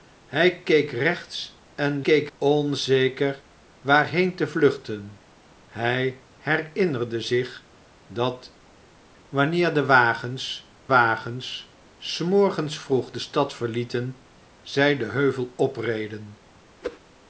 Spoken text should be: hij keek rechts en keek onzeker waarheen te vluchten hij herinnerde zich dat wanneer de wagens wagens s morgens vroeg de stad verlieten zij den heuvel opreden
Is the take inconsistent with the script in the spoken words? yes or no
no